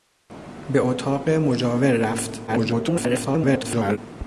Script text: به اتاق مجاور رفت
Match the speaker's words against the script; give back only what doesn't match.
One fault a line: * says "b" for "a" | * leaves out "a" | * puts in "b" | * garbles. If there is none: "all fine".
* garbles